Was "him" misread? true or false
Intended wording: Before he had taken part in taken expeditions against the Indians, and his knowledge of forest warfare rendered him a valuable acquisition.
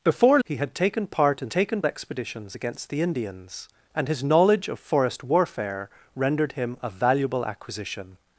false